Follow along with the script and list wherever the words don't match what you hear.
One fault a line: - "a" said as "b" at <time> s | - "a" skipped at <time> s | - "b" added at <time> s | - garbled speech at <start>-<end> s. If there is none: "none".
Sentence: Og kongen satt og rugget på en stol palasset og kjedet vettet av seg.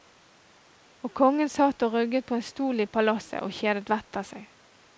- "i" added at 2.8 s